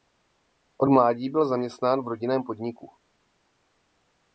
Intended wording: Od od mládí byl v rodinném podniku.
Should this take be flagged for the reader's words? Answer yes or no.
yes